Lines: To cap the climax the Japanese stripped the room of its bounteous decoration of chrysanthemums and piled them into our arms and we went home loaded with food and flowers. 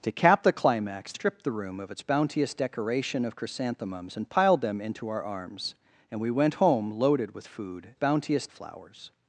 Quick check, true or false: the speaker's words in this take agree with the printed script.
false